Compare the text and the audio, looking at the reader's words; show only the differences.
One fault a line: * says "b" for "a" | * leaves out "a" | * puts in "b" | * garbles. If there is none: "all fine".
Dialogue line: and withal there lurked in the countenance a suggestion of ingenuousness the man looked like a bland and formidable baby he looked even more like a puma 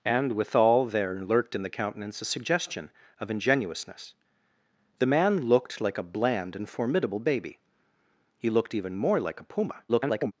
* garbles